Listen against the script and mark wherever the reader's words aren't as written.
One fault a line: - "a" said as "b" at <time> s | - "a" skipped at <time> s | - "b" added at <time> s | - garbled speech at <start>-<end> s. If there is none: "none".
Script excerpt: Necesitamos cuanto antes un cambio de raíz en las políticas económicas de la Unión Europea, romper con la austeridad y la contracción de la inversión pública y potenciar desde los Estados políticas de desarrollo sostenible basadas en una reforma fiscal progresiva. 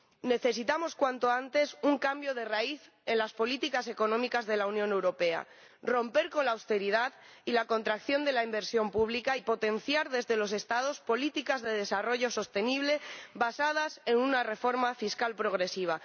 none